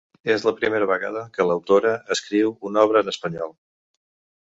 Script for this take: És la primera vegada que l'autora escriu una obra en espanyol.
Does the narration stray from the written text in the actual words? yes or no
no